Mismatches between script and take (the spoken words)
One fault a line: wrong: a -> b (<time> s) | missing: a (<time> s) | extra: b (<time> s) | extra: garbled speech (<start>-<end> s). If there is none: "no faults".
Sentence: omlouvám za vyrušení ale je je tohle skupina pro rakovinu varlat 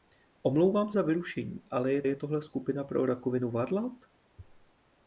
no faults